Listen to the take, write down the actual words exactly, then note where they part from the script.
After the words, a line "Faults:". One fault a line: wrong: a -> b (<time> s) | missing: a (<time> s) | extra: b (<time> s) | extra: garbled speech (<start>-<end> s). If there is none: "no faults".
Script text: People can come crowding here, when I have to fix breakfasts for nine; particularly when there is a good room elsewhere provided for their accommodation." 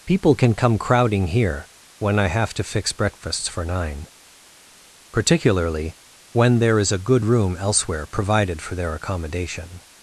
People can come crowding here, when I have to fix breakfasts for nine; particularly when there is a good room elsewhere provided for their accommodation."
Faults:
no faults